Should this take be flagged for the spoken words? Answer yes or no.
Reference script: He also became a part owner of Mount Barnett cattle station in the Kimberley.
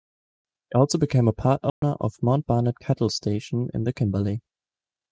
no